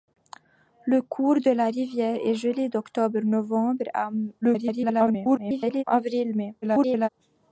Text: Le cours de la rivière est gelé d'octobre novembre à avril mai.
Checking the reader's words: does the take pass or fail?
fail